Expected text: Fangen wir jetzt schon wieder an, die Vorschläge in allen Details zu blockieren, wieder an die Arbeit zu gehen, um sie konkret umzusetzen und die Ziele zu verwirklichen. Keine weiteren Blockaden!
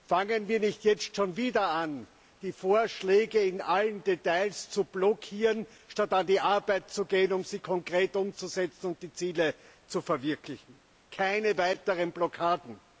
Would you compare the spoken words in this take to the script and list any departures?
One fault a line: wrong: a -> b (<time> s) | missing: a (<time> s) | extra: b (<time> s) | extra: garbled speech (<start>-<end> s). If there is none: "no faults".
extra: nicht (0.6 s)
wrong: wieder -> statt (5.9 s)